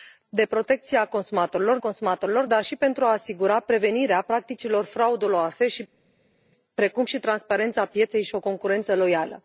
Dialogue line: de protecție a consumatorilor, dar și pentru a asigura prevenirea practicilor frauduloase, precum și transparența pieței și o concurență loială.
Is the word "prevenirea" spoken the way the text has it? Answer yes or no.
yes